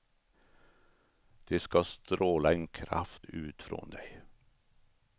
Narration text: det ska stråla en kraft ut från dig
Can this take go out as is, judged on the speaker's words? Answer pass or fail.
pass